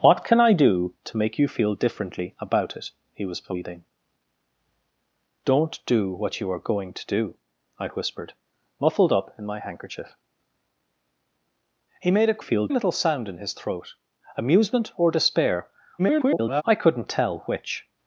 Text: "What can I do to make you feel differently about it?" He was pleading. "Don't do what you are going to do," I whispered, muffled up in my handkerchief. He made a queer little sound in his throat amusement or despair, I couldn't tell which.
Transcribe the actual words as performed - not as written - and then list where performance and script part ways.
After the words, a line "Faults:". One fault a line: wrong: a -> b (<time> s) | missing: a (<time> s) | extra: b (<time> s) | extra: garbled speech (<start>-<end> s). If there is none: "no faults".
"What can I do to make you feel differently about it?" He was pleading. "Don't do what you are going to do," I whispered, muffled up in my handkerchief. He made a feel little sound in his throat amusement or despair, [garbled] I couldn't tell which.
Faults:
wrong: queer -> feel (12.4 s)
extra: garbled speech (16.0-16.6 s)